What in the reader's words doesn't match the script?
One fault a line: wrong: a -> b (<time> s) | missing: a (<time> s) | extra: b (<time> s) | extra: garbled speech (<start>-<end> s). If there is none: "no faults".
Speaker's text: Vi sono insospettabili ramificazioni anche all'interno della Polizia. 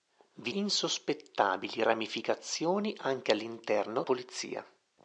missing: sono (0.5 s)
missing: della (4.0 s)